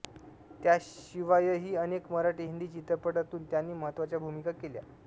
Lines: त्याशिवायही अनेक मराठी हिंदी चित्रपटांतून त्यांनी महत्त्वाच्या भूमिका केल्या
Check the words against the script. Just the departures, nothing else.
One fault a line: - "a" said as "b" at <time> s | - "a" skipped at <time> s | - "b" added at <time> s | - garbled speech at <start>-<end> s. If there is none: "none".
none